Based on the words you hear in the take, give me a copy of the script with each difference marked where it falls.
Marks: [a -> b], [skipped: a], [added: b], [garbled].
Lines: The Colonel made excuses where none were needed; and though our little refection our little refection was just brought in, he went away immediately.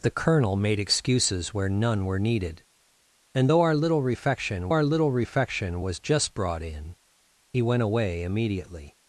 The Colonel made excuses where none were needed; and though our little refection our little refection was just brought in, he went away immediately.